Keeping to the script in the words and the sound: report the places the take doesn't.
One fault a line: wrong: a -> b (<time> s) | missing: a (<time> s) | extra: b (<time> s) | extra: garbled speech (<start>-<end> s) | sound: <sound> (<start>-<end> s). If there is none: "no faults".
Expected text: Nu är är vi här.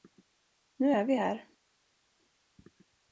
missing: är (1.0 s)